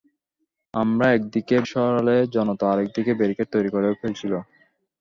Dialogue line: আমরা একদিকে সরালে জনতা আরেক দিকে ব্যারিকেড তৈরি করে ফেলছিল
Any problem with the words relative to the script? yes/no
no